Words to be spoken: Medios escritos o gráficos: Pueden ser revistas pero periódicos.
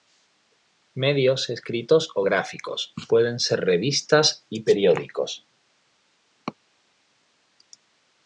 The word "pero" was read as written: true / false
false